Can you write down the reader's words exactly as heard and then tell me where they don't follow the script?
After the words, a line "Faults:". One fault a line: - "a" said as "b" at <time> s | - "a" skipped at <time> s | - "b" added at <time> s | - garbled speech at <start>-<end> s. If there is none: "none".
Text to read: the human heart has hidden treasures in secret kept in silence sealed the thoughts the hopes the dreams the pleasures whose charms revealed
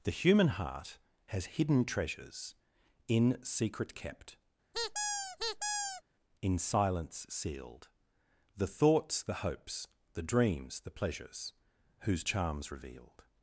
the human heart has hidden treasures in secret kept in silence sealed the thoughts the hopes the dreams the pleasures whose charms revealed
Faults:
none